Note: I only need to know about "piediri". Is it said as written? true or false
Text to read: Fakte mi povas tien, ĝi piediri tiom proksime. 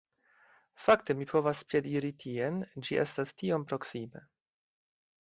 false